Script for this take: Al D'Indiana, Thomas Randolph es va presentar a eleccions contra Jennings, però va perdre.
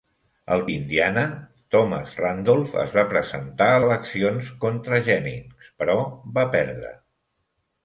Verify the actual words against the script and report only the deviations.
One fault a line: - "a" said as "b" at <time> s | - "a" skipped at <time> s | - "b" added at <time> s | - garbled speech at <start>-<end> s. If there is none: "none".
none